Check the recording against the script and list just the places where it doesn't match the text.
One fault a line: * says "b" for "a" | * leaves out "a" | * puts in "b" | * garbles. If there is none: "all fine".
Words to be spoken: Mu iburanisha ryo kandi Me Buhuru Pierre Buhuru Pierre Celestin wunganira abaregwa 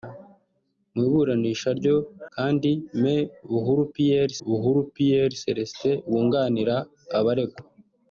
all fine